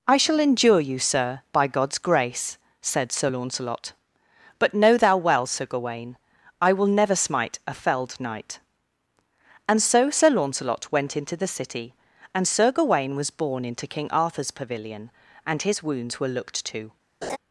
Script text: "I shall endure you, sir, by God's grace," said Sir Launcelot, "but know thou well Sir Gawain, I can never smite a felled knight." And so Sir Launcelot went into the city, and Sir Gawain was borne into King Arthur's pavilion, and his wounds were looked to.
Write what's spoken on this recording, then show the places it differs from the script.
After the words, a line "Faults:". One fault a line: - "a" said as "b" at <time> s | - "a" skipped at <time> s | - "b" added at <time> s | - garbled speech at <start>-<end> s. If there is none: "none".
"I shall endure you, sir, by God's grace," said Sir Launcelot, "but know thou well Sir Gawain, I will never smite a felled knight." And so Sir Launcelot went into the city, and Sir Gawain was borne into King Arthur's pavilion, and his wounds were looked to.
Faults:
- "can" said as "will" at 6.7 s